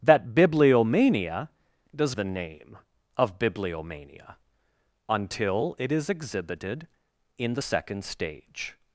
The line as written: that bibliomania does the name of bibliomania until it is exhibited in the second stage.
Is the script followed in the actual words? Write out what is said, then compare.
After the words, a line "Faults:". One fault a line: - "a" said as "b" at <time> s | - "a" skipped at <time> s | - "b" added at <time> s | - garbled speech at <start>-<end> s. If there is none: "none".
that bibliomania does the name of bibliomania until it is exhibited in the second stage.
Faults:
none